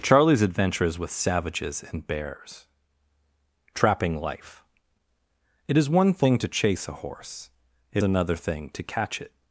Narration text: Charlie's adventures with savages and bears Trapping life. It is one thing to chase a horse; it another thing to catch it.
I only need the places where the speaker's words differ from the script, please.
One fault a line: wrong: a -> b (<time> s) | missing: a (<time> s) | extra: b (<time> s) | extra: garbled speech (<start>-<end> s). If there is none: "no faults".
no faults